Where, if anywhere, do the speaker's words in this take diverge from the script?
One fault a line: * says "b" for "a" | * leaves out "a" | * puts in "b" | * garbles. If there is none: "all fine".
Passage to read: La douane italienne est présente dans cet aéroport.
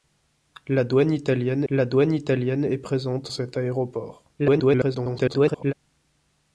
* puts in "la douane italienne"
* leaves out "dans"
* garbles